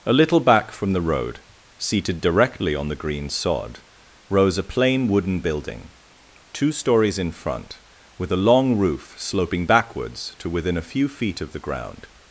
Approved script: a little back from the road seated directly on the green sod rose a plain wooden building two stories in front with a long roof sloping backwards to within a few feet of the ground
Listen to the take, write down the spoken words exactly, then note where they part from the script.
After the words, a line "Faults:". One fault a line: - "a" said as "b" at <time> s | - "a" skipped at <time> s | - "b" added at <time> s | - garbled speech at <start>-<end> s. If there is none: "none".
a little back from the road seated directly on the green sod rose a plain wooden building two stories in front with a long roof sloping backwards to within a few feet of the ground
Faults:
none